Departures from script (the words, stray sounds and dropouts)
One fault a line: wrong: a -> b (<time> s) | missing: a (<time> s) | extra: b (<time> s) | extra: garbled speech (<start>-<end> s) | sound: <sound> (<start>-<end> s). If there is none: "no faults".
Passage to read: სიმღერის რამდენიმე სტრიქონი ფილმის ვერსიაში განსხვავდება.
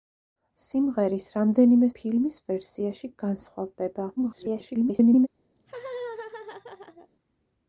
missing: სტრიქონი (1.9 s)
extra: garbled speech (4.2-5.3 s)
sound: laugh (5.6-7.1 s)